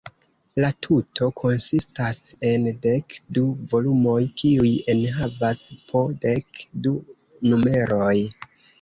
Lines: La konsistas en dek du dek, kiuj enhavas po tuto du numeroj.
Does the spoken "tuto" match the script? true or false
false